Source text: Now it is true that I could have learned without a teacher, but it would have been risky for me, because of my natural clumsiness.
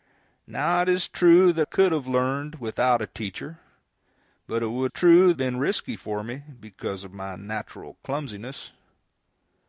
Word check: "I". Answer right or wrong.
wrong